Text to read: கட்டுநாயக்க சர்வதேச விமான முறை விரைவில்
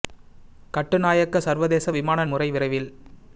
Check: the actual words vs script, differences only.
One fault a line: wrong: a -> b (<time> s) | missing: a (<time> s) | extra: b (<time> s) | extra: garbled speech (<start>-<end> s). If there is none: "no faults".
no faults